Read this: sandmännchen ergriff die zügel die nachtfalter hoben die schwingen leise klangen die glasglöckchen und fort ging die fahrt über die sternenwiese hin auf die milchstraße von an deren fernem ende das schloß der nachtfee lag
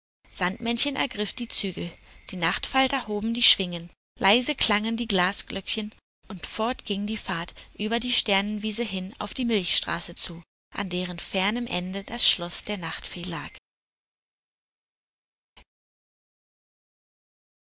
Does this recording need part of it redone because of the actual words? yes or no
yes